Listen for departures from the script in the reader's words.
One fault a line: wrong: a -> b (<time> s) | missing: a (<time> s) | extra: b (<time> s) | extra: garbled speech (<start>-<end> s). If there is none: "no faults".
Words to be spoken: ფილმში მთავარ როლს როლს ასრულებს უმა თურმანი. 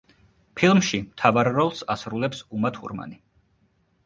missing: როლს (1.8 s)